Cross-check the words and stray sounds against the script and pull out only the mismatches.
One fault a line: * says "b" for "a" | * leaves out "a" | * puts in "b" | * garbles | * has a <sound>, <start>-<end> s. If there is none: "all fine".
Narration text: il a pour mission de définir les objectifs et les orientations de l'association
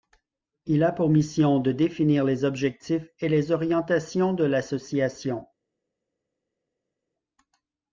all fine